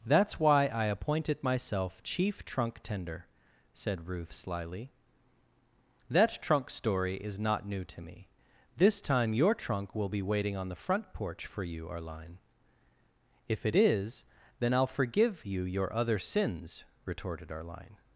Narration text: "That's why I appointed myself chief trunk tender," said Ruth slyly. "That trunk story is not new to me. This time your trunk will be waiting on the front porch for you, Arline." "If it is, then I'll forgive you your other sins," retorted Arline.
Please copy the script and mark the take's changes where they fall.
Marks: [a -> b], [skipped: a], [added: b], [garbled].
"That's why I appointed myself chief trunk tender," said Ruth slyly. "That trunk story is not new to me. This time your trunk will be waiting on the front porch for you, Arline." "If it is, then I'll forgive you your other sins," retorted Arline.